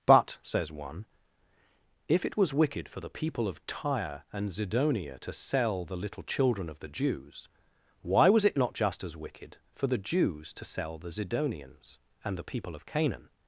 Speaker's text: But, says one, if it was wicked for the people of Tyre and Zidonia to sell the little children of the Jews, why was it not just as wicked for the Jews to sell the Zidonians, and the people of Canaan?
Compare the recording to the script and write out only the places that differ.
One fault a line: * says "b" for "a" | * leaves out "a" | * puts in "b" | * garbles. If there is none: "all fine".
all fine